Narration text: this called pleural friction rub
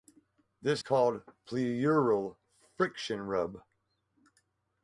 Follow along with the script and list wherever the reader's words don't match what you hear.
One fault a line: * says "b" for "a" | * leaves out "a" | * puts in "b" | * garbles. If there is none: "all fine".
all fine